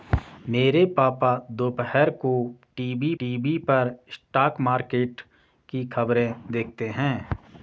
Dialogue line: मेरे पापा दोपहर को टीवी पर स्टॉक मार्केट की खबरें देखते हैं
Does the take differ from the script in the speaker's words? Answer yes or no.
yes